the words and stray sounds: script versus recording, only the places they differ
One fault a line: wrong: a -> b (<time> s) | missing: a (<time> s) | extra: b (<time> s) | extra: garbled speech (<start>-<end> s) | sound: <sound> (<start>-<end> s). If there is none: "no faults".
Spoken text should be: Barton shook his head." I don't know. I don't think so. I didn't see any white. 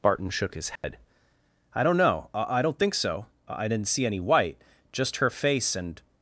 sound: dropout (0.8-0.8 s)
extra: Just her face and (4.9 s)